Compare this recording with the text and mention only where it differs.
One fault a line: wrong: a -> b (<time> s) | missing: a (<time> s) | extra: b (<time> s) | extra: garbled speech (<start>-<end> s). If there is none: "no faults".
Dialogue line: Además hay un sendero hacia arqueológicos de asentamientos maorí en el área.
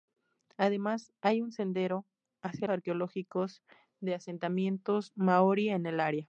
no faults